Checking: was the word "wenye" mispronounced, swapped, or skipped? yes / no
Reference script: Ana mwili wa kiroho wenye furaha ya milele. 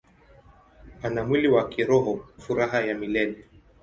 yes